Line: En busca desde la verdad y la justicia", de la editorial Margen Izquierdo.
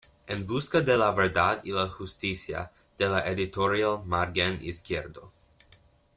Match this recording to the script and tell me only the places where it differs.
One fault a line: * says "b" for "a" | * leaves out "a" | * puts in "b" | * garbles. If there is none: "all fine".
* says "de" for "desde"